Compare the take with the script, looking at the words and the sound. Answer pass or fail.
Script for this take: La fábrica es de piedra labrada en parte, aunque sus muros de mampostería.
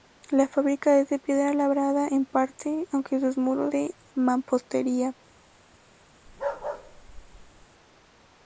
fail